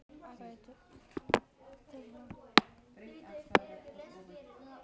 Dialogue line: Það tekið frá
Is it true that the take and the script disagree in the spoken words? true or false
false